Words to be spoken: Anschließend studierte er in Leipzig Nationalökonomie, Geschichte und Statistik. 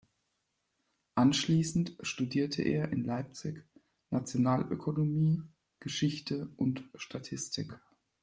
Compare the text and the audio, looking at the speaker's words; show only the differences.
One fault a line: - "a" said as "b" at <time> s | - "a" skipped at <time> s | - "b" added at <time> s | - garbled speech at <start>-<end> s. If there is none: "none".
none